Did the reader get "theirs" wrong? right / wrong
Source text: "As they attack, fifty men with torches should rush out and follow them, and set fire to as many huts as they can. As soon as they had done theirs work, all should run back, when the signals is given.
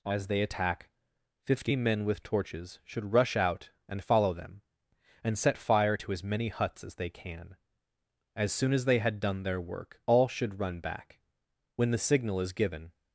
wrong